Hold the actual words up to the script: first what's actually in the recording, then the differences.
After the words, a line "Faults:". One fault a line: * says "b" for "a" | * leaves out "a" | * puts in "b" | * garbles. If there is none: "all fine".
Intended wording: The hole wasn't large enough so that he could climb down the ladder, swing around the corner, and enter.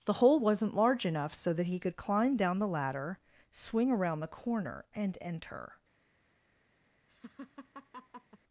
The hole wasn't large enough so that he could climb down the ladder, swing around the corner, and enter.
Faults:
all fine